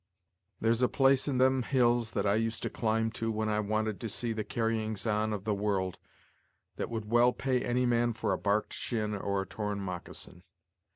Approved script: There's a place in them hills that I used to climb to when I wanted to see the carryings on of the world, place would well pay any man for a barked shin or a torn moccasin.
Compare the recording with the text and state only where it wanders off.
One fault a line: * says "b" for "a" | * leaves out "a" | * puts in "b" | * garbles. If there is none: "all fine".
* says "that" for "place"